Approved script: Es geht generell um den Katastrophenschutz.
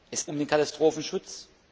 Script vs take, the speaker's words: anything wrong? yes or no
yes